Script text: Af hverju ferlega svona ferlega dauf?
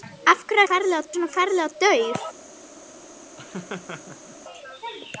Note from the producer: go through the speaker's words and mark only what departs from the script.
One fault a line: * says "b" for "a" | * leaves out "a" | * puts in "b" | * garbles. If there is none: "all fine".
all fine